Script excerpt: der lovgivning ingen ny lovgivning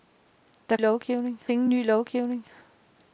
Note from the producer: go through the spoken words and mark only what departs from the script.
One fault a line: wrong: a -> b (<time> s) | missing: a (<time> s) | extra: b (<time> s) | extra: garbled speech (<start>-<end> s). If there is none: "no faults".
no faults